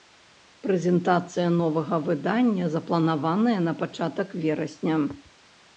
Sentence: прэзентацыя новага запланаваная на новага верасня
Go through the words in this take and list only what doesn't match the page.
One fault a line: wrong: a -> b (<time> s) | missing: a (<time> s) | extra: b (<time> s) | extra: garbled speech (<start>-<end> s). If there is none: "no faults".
extra: выдання (2.1 s)
wrong: новага -> пачатак (3.9 s)